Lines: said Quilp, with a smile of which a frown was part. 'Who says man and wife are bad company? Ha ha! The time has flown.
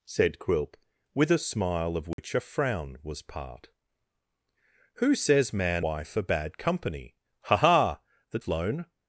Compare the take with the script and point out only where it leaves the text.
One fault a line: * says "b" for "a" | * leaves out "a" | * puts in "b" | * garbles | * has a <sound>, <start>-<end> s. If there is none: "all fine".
* has a dropout, 2.1-2.2 s
* leaves out "and"
* leaves out "time has"